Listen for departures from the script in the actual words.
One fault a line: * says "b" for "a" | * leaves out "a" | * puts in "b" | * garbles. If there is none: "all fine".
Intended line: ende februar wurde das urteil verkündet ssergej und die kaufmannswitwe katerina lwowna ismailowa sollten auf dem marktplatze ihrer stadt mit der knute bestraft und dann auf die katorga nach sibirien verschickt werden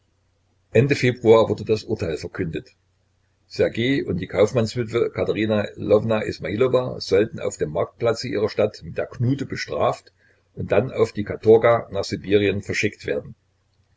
all fine